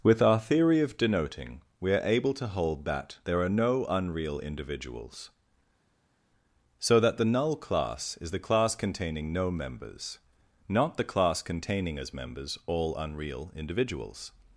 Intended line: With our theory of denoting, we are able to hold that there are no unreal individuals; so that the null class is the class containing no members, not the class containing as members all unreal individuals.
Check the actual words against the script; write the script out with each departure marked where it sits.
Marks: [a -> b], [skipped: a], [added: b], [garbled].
With our theory of denoting, we are able to hold that there are no unreal individuals; so that the null class is the class containing no members, not the class containing as members all unreal individuals.